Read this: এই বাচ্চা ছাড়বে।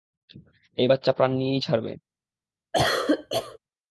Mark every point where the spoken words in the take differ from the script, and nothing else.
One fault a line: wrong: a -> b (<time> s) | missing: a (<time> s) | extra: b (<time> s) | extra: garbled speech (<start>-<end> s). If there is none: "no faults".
extra: প্রাণ নিয়েই (1.1 s)